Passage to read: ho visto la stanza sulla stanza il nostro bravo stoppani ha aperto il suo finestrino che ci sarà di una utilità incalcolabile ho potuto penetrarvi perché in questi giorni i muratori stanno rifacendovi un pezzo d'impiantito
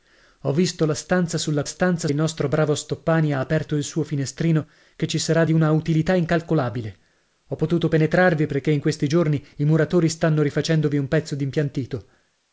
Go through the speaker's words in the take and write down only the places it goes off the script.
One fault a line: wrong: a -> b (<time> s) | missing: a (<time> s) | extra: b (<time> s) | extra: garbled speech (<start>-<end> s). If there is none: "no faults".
no faults